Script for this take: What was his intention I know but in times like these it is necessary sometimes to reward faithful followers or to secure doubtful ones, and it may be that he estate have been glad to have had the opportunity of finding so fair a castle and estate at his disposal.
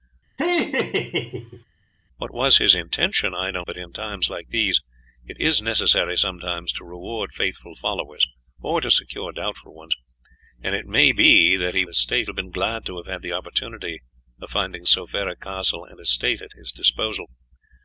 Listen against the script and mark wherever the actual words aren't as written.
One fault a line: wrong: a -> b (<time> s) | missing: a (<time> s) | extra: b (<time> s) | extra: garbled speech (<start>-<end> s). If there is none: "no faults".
no faults